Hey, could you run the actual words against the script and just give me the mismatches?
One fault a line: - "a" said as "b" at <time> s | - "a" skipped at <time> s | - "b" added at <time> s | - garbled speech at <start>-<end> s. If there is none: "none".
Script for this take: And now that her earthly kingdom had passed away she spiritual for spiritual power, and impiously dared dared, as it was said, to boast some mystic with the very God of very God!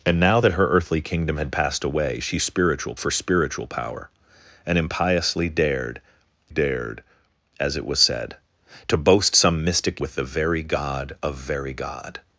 none